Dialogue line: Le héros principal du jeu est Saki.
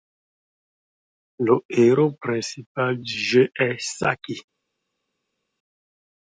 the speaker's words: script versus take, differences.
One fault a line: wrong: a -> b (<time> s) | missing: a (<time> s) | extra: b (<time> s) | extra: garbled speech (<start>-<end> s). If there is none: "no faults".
no faults